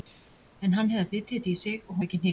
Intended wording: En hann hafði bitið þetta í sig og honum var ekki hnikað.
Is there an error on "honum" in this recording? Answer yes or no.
yes